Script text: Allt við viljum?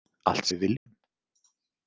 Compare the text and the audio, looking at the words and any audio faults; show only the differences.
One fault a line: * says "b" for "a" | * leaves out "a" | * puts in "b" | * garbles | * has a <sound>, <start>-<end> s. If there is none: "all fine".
* has a dropout, 0.8-0.9 s